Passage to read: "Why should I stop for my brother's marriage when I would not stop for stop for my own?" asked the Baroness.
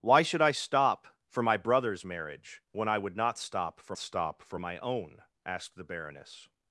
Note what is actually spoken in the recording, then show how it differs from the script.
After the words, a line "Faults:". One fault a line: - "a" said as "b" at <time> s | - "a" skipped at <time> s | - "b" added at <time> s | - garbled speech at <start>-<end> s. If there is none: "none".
"Why should I stop for my brother's marriage when I would not stop for stop for my own?" asked the Baroness.
Faults:
none